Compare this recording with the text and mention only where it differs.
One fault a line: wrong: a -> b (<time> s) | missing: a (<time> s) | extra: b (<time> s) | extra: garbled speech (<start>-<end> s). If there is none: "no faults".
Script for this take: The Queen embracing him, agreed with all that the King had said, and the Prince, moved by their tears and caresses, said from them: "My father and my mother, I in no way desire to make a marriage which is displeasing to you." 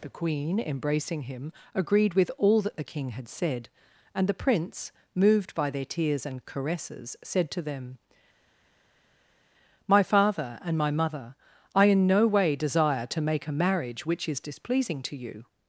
wrong: from -> to (7.5 s)